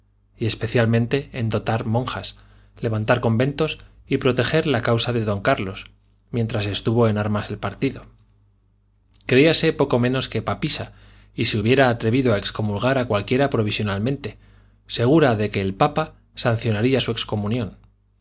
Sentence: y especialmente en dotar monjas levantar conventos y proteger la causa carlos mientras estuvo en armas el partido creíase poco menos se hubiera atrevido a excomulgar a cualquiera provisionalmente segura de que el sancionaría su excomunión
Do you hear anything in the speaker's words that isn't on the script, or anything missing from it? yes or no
yes